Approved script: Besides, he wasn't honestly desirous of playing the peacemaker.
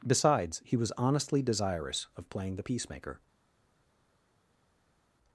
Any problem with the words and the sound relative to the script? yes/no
yes